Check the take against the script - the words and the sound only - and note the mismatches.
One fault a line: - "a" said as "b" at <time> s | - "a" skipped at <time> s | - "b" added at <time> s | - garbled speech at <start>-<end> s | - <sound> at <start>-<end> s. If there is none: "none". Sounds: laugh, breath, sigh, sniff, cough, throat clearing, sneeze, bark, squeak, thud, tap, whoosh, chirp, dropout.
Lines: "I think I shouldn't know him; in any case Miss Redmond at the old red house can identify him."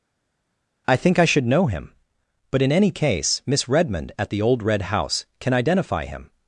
- "shouldn't" said as "should" at 1.3 s
- "but" added at 2.5 s